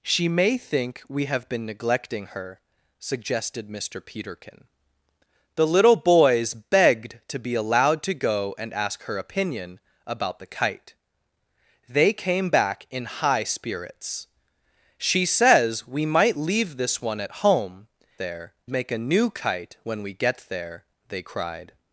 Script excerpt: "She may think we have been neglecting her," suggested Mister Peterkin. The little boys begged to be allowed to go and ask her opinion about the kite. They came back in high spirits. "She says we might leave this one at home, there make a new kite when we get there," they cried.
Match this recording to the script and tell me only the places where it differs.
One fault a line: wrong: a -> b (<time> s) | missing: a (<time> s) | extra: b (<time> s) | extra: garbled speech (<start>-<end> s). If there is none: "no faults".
no faults